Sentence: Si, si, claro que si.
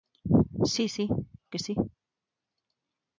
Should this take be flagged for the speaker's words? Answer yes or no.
yes